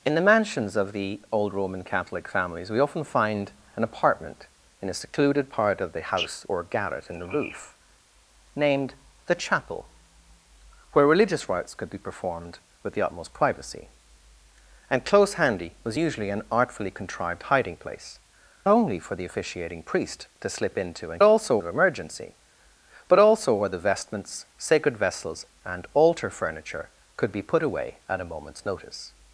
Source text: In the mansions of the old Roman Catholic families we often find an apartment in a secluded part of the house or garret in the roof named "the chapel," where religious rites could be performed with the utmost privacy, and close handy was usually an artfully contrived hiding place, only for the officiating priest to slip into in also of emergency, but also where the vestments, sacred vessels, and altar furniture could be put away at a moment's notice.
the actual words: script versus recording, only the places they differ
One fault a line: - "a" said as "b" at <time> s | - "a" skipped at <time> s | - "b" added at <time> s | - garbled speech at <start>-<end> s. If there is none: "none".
none